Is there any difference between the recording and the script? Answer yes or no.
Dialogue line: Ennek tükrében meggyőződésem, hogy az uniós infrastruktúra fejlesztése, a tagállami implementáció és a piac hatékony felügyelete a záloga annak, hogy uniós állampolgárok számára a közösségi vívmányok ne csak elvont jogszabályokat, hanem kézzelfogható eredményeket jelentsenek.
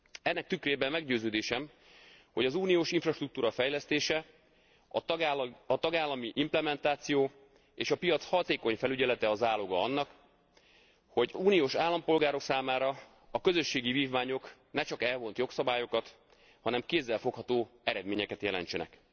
no